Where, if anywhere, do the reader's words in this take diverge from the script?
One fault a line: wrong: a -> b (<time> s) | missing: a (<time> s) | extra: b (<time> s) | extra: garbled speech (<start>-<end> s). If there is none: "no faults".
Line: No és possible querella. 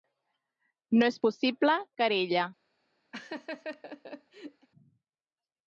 no faults